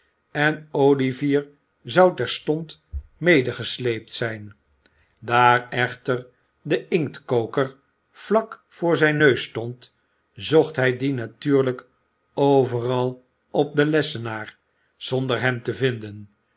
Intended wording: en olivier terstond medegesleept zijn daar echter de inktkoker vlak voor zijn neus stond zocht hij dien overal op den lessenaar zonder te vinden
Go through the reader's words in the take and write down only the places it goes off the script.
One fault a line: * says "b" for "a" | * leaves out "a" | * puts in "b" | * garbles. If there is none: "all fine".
* puts in "zou"
* puts in "natuurlijk"
* puts in "hem"